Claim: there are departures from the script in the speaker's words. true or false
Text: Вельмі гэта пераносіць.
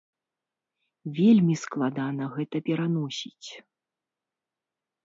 true